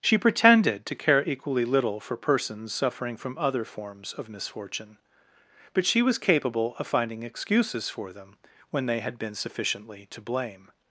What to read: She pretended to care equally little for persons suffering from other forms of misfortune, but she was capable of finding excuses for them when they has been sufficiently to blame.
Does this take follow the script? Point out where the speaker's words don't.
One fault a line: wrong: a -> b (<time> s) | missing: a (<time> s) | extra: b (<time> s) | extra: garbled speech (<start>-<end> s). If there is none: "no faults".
wrong: has -> had (9.0 s)